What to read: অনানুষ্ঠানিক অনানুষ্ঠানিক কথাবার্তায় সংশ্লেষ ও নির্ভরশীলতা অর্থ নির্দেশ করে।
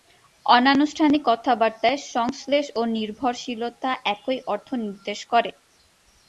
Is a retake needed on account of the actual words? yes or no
yes